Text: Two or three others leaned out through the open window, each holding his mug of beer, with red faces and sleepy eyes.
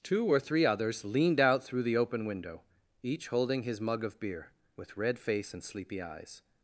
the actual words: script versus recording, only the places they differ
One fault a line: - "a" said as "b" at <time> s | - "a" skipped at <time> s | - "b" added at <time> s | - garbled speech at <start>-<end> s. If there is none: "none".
- "faces" said as "face" at 5.2 s